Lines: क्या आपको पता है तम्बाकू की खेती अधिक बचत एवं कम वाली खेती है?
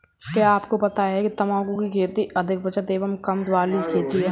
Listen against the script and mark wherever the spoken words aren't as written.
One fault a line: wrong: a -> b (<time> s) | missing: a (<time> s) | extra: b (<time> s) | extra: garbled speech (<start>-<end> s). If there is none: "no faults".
no faults